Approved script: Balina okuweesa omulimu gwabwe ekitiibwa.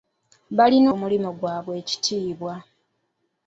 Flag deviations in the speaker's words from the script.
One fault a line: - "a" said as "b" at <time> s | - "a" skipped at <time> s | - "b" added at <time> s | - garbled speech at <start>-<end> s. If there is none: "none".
- "okuweesa" skipped at 0.9 s